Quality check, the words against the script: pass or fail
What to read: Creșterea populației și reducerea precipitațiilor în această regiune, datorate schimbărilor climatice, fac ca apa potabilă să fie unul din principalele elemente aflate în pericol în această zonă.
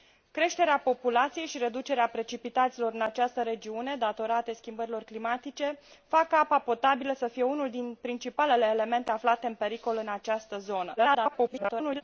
fail